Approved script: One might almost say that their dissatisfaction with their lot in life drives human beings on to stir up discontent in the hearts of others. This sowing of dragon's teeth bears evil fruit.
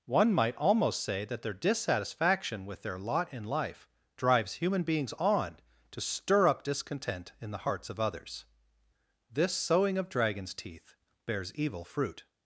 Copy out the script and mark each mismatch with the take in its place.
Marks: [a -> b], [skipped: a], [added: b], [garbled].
One might almost say that their dissatisfaction with their lot in life drives human beings on to stir up discontent in the hearts of others. This sowing of dragon's teeth bears evil fruit.